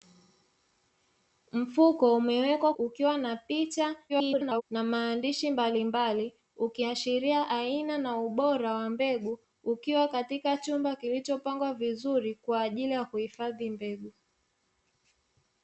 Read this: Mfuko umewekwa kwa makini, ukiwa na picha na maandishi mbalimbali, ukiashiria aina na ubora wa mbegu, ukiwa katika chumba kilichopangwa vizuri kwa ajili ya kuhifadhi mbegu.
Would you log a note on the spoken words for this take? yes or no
yes